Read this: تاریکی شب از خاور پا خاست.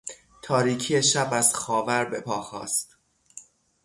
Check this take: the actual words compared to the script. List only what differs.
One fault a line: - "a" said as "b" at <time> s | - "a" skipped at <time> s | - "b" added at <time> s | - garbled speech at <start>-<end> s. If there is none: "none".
- "به" added at 2.0 s